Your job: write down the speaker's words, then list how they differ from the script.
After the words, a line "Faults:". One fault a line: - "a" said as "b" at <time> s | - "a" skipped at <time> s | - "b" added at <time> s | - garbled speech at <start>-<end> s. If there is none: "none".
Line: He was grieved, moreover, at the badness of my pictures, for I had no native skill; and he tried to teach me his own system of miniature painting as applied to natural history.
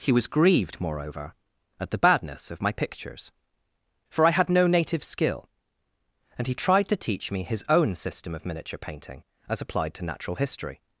He was grieved, moreover, at the badness of my pictures, for I had no native skill; and he tried to teach me his own system of miniature painting as applied to natural history.
Faults:
none